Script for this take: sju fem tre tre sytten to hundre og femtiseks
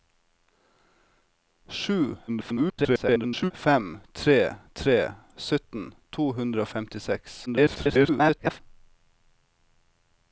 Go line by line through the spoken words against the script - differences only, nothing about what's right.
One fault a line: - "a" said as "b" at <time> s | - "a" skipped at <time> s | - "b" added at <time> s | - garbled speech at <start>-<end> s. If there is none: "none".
- garbled speech at 2.3-3.5 s
- garbled speech at 7.5-8.6 s